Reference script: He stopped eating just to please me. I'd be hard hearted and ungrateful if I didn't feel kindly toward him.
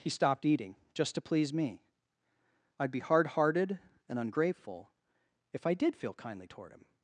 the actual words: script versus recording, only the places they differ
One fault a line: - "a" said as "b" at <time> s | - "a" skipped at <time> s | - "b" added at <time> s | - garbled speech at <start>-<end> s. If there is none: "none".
- "didn't" said as "did" at 5.7 s